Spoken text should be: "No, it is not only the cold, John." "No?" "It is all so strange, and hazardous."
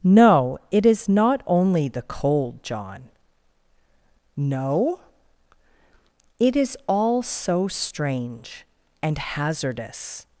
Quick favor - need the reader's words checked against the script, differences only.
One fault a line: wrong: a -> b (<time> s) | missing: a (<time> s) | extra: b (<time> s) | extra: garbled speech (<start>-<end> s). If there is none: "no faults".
no faults